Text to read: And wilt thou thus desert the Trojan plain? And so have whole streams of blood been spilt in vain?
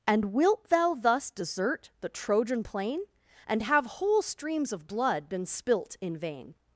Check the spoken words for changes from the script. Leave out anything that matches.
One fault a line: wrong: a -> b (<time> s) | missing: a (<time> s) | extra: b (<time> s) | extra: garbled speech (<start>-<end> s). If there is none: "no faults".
missing: so (3.6 s)